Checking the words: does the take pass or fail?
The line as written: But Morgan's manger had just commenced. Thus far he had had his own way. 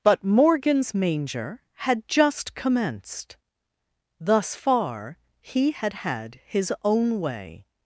pass